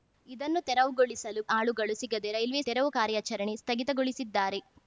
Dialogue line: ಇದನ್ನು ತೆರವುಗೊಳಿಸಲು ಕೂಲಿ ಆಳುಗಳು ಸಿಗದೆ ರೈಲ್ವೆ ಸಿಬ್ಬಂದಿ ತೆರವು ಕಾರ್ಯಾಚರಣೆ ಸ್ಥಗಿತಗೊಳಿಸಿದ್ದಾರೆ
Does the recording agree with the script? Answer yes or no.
no